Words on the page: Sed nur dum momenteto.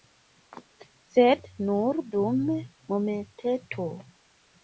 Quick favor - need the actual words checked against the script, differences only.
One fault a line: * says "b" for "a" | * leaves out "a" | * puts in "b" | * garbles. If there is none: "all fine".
all fine